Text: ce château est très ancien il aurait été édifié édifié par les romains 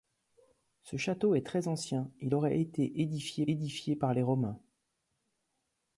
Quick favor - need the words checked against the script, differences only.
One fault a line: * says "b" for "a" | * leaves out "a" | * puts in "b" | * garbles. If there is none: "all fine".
all fine